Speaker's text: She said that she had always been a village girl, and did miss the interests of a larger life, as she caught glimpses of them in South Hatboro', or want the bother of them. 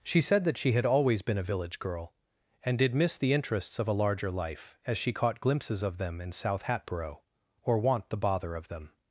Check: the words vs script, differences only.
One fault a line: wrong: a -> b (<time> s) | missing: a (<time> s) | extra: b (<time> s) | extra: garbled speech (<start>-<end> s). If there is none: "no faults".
no faults